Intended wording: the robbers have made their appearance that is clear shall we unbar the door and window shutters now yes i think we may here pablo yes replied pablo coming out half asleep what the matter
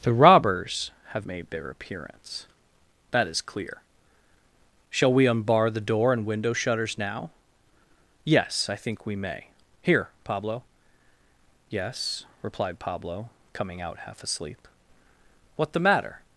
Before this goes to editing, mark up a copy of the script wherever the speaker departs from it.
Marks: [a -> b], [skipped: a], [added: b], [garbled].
the robbers have made their appearance that is clear shall we unbar the door and window shutters now yes i think we may here pablo yes replied pablo coming out half asleep what the matter